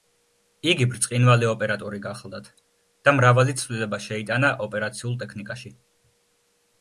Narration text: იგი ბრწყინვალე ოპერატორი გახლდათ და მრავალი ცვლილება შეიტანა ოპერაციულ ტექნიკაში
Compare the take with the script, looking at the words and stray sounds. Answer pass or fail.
pass